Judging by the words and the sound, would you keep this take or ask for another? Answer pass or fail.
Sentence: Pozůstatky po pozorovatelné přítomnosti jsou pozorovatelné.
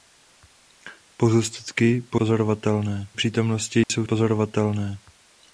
fail